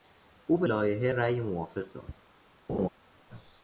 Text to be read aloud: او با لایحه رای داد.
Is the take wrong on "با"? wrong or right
wrong